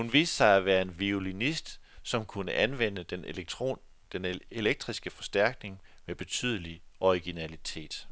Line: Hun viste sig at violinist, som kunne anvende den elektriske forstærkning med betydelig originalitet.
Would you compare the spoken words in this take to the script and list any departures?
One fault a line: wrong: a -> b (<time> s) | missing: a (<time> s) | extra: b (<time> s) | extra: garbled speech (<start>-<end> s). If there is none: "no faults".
extra: være en (0.7 s)